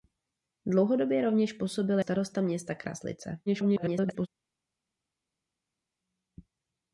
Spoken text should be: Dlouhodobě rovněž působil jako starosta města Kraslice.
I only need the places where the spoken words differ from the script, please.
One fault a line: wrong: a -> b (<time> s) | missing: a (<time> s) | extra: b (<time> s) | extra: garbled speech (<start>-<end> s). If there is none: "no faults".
missing: jako (2.0 s)
extra: garbled speech (3.5-4.3 s)